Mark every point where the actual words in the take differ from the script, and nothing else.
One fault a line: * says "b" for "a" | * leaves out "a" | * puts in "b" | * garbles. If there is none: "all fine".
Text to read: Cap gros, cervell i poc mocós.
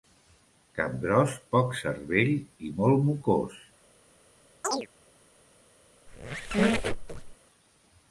* puts in "poc"
* says "molt" for "poc"